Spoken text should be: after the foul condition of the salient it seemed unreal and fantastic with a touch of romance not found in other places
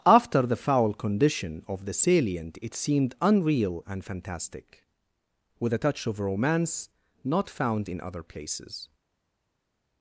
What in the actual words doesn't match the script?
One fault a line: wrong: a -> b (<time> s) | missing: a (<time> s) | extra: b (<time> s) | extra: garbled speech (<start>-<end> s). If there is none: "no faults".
no faults